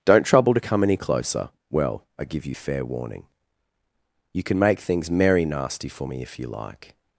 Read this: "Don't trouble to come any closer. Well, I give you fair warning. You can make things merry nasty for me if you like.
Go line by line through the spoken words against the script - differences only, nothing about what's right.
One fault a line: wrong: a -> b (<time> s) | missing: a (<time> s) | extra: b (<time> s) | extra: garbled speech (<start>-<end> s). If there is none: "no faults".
no faults